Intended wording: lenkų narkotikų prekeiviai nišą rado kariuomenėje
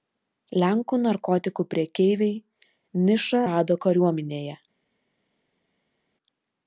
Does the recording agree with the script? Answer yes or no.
yes